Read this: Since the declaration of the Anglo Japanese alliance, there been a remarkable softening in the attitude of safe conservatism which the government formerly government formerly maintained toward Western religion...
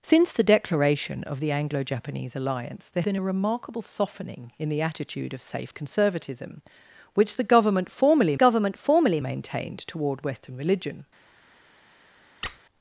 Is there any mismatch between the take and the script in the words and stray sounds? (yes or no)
yes